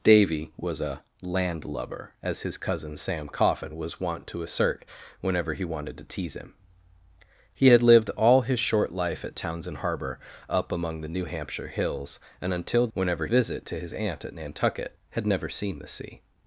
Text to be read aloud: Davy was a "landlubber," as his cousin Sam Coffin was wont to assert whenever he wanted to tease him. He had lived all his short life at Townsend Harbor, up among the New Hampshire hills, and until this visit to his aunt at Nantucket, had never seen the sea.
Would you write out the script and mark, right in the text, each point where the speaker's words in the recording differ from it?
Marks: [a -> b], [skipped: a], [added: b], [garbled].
Davy was a "landlubber," as his cousin Sam Coffin was wont to assert whenever he wanted to tease him. He had lived all his short life at Townsend Harbor, up among the New Hampshire hills, and until [this -> whenever] visit to his aunt at Nantucket, had never seen the sea.